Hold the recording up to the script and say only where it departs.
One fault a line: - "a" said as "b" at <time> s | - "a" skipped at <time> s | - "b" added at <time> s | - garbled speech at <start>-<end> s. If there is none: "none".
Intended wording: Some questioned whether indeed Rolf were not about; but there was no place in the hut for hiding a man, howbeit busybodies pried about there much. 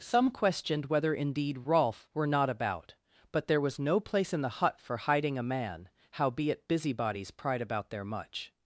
none